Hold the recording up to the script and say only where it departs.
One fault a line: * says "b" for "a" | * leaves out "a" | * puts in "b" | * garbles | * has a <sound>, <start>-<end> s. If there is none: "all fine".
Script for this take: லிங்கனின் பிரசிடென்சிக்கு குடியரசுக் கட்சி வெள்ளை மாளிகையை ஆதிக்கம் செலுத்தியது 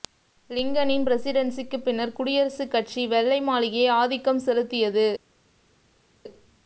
* puts in "பின்னர்"